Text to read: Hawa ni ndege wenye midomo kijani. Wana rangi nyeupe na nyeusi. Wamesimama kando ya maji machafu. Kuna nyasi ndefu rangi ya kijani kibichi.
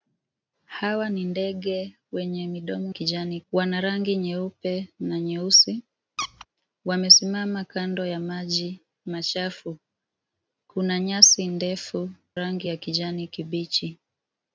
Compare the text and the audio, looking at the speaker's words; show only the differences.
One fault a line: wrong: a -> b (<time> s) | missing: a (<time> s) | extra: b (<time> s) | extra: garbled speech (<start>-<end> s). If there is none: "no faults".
no faults